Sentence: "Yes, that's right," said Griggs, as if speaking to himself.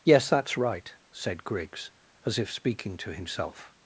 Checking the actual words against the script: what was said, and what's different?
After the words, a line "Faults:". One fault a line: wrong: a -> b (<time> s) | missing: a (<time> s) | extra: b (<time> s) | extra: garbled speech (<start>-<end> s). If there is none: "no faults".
"Yes, that's right," said Griggs, as if speaking to himself.
Faults:
no faults